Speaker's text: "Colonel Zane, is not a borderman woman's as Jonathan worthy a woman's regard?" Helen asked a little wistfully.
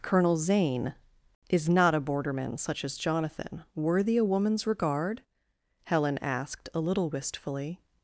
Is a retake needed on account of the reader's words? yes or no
yes